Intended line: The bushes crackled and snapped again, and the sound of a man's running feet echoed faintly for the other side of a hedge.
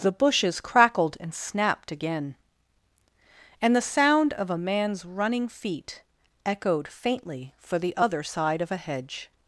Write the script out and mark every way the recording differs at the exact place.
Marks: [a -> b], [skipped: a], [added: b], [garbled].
The bushes crackled and snapped again, and the sound of a man's running feet echoed faintly for the other side of a hedge.